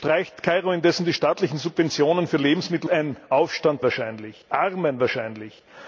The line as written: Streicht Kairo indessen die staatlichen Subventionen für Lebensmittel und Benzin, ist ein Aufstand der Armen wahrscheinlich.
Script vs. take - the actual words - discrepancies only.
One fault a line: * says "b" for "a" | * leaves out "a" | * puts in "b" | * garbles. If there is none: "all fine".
* leaves out "und Benzin ist"
* says "wahrscheinlich" for "der"